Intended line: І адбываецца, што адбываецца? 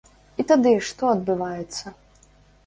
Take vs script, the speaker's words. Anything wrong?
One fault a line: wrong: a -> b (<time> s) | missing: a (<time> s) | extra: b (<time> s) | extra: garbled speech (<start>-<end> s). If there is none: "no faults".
wrong: адбываецца -> тады (0.5 s)